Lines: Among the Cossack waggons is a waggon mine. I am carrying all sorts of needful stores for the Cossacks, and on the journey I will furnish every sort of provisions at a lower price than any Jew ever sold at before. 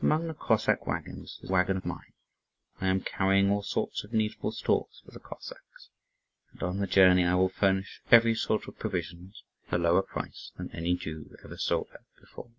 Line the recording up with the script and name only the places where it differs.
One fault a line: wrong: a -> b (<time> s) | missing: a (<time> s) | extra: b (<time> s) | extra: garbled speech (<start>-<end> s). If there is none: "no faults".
no faults